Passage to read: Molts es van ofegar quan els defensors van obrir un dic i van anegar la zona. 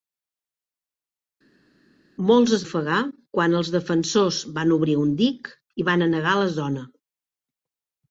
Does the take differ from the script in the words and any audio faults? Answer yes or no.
yes